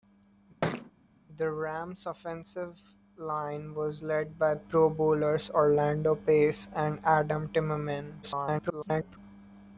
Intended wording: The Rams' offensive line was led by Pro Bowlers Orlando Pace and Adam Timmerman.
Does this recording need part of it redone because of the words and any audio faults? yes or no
yes